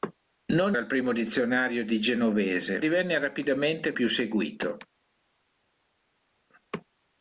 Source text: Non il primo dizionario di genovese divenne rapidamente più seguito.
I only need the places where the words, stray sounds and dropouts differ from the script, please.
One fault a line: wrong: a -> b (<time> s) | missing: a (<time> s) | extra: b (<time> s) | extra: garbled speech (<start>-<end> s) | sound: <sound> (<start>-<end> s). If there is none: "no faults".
no faults